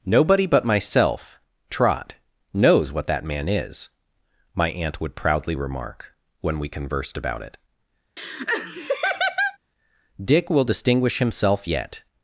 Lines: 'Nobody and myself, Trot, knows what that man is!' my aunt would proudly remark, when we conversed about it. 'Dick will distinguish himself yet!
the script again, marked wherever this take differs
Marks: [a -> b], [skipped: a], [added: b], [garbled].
'Nobody [and -> but] myself, Trot, knows what that man is!' my aunt would proudly remark, when we conversed about it. 'Dick will distinguish himself yet!